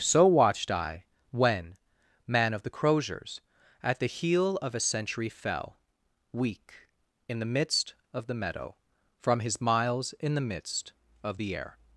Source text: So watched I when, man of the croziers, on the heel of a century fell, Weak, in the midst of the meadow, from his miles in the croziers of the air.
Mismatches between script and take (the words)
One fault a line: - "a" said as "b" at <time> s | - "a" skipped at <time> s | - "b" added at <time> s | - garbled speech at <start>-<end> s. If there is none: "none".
- "on" said as "at" at 3.8 s
- "croziers" said as "midst" at 10.5 s